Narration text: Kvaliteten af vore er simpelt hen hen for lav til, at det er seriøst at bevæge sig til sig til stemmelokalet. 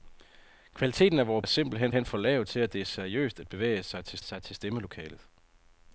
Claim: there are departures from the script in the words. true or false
false